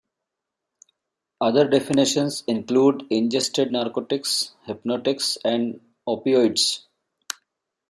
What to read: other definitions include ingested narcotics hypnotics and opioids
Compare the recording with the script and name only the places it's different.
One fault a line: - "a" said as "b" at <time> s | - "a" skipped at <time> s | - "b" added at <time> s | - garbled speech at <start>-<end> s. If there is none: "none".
none